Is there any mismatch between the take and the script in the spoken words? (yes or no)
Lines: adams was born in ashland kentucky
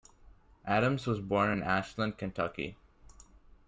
no